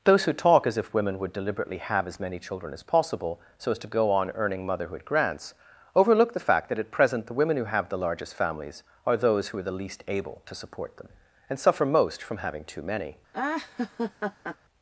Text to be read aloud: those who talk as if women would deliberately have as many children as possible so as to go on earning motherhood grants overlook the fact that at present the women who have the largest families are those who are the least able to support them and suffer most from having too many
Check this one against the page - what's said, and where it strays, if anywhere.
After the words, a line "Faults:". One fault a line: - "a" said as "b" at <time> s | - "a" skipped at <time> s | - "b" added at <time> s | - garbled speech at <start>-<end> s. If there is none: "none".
those who talk as if women would deliberately have as many children as possible so as to go on earning motherhood grants overlook the fact that at present the women who have the largest families are those who are the least able to support them and suffer most from having too many
Faults:
none